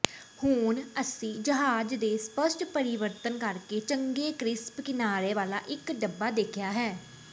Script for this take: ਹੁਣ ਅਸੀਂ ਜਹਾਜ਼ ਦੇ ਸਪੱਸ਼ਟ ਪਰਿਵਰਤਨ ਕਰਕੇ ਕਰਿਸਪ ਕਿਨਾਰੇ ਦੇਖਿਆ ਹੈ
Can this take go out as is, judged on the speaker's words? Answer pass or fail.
fail